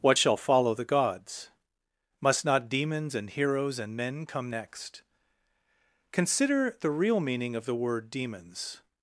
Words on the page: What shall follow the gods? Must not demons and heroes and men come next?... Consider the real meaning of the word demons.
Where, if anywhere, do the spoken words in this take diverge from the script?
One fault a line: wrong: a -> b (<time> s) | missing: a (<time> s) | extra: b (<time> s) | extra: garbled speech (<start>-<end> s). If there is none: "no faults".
no faults